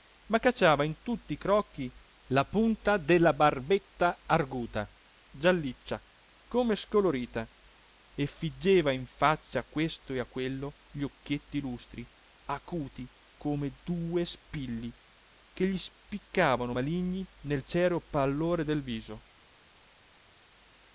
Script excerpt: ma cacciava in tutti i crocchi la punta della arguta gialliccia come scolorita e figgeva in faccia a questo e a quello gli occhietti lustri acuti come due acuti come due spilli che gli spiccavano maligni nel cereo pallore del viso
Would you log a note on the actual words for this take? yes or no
yes